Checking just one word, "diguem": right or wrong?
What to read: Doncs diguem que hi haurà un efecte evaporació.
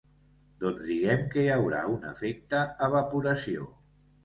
right